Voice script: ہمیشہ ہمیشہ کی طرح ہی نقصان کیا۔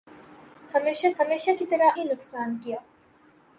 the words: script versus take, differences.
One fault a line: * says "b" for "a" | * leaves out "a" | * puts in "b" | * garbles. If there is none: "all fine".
all fine